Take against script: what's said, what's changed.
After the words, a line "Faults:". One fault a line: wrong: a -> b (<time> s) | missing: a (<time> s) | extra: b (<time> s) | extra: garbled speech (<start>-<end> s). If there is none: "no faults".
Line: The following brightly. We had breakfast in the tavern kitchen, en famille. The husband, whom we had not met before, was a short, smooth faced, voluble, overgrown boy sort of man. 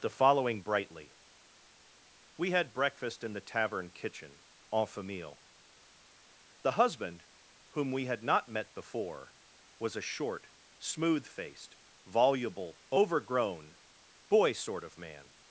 The following brightly. We had breakfast in the tavern kitchen, en famille. The husband, whom we had not met before, was a short, smooth faced, voluble, overgrown boy sort of man.
Faults:
no faults